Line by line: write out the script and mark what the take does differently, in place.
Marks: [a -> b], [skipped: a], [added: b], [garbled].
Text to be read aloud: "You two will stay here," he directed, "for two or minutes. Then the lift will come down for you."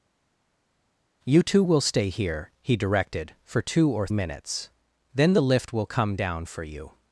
"You two will stay here," he directed, "for two or minutes. Then the lift will come down for you."